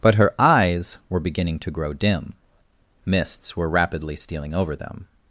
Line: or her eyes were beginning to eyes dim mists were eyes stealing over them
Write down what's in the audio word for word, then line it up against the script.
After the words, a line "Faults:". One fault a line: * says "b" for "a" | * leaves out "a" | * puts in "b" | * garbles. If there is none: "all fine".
but her eyes were beginning to grow dim mists were rapidly stealing over them
Faults:
* says "but" for "or"
* says "grow" for "eyes"
* says "rapidly" for "eyes"